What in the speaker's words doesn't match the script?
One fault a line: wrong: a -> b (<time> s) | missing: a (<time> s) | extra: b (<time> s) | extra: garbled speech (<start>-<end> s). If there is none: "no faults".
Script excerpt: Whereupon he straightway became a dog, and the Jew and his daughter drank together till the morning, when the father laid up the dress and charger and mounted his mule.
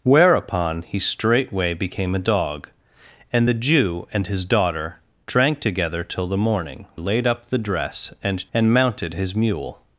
missing: when the father (6.9 s)
missing: charger (8.5 s)